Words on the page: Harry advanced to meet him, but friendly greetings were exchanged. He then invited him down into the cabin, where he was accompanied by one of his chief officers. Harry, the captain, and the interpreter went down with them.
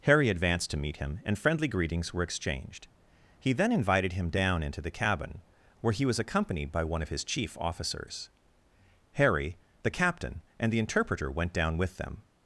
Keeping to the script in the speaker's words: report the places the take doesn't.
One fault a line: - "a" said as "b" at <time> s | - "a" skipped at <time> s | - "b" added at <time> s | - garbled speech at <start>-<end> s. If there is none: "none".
- "but" said as "and" at 1.2 s